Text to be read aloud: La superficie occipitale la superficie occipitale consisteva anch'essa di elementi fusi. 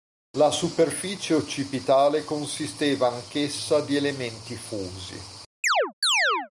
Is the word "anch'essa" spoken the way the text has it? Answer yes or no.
yes